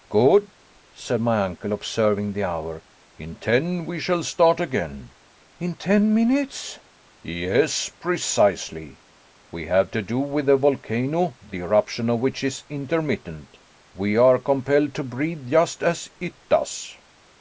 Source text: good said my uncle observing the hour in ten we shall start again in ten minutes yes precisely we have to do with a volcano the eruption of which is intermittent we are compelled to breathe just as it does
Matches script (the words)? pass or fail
pass